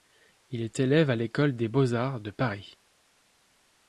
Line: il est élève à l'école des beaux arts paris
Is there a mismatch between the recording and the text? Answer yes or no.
yes